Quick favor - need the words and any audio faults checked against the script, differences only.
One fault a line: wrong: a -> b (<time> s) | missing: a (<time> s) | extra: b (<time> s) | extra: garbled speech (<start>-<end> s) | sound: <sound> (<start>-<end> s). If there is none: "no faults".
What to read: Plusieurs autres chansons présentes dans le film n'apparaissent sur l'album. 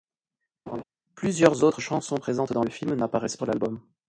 sound: laugh (0.7-0.8 s)